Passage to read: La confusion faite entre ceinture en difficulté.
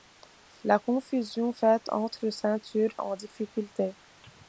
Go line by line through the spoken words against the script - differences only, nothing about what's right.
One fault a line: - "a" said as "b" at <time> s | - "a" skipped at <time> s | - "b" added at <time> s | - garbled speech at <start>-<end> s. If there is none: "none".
none